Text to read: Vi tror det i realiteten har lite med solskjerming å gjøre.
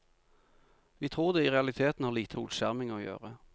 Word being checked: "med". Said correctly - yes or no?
no